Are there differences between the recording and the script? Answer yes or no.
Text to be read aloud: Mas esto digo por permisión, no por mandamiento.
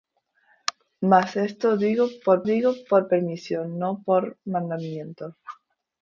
yes